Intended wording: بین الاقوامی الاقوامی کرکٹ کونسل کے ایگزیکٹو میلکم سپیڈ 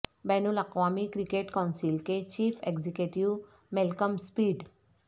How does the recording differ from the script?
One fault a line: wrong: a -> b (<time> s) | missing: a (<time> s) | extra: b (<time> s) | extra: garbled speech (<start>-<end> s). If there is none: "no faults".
missing: الاقوامی (1.1 s)
extra: چیف (2.2 s)